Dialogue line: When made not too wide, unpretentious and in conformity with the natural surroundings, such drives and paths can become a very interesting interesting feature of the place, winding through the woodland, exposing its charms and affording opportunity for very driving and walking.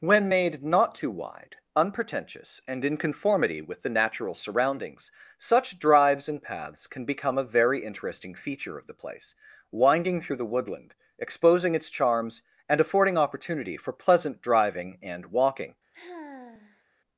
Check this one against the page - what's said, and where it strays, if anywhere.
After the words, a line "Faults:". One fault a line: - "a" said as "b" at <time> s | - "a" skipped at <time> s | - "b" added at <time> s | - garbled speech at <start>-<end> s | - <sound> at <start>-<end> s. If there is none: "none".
When made not too wide, unpretentious and in conformity with the natural surroundings, such drives and paths can become a very interesting feature of the place, winding through the woodland, exposing its charms and affording opportunity for pleasant driving and walking.
Faults:
- "interesting" skipped at 8.3 s
- "very" said as "pleasant" at 13.9 s
- sigh at 15.9-16.8 s